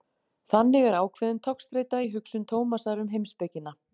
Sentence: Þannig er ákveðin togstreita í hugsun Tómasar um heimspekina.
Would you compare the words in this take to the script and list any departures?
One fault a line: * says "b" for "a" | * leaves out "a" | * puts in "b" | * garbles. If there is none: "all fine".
all fine